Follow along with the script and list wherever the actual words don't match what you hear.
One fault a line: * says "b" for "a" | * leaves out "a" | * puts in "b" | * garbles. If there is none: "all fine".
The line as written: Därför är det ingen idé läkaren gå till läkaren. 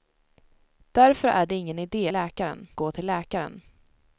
all fine